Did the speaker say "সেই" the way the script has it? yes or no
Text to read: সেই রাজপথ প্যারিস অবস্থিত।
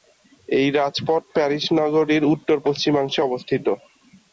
no